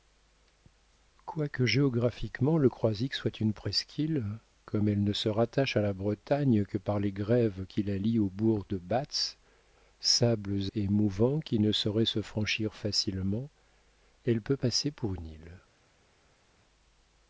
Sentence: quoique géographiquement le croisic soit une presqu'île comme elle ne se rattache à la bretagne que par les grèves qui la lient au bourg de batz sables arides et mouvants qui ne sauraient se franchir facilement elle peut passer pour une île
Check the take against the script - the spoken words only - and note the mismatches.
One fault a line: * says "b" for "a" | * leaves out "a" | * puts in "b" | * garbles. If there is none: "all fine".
* leaves out "arides"